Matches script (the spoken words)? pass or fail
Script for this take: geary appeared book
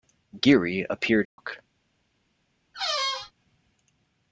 pass